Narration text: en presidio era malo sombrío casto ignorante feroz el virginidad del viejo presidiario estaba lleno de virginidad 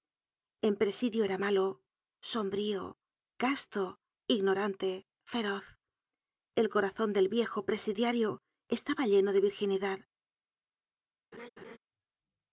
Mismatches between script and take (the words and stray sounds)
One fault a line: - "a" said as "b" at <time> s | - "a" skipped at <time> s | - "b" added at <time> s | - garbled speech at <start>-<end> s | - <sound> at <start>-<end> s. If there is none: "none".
- "virginidad" said as "corazon" at 6.7 s
- laugh at 11.3-11.8 s